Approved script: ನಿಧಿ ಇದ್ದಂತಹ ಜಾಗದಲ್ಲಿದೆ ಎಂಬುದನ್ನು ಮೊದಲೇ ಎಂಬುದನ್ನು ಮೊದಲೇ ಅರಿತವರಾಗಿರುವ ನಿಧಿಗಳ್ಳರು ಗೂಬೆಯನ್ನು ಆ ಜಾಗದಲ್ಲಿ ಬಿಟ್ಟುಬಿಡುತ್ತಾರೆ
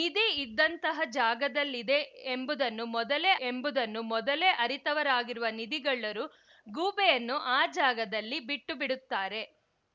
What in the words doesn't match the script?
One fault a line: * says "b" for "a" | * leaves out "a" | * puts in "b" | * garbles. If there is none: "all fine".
all fine